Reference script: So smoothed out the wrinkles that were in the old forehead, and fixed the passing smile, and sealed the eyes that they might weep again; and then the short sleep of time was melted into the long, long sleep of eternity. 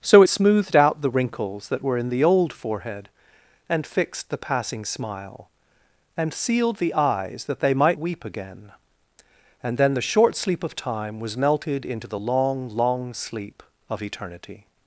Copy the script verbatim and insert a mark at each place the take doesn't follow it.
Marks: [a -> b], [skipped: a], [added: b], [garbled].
So smoothed out the wrinkles that were in the old forehead, and fixed the passing smile, and sealed the eyes that they might weep again; and then the short sleep of time was melted into the long, long sleep of eternity.